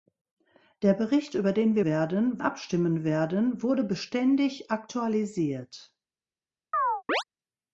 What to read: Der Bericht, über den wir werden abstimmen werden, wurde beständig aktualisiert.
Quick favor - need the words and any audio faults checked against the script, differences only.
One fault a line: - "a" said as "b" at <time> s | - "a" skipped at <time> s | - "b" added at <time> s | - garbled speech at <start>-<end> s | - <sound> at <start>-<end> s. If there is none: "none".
- chirp at 6.7-7.2 s